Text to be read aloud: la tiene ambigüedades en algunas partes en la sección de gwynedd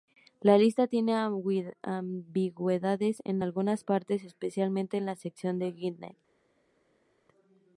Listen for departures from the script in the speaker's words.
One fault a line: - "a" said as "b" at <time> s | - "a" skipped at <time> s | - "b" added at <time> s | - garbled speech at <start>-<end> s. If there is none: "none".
- "lista" added at 0.6 s
- "especialmente" added at 4.2 s